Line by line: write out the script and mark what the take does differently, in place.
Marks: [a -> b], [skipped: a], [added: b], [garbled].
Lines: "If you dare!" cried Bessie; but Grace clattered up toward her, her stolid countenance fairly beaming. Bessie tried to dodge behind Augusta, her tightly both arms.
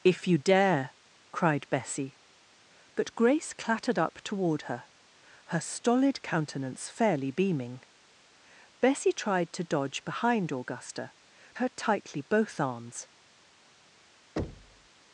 "If you dare!" cried Bessie; but Grace clattered up toward her, her stolid countenance fairly beaming. Bessie tried to dodge behind Augusta, her tightly both arms.